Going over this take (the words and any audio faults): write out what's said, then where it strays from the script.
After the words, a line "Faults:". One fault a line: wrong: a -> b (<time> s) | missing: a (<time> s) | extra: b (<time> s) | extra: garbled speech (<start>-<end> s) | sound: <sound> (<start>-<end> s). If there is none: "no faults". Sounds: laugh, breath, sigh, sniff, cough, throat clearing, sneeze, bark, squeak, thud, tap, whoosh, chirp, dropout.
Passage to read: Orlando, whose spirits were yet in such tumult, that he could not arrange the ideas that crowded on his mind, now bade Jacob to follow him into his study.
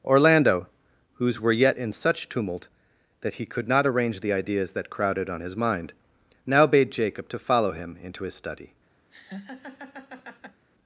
Orlando, whose were yet in such tumult, that he could not arrange the ideas that crowded on his mind, now bade Jacob to follow him into his study.
Faults:
missing: spirits (1.4 s)
sound: laugh (9.1-10.6 s)